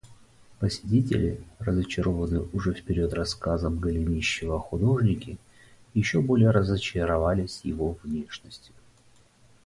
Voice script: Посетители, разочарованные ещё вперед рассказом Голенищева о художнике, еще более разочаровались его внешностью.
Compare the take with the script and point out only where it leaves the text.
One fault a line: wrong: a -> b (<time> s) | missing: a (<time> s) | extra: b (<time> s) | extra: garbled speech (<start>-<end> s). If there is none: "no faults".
wrong: ещё -> уже (2.5 s)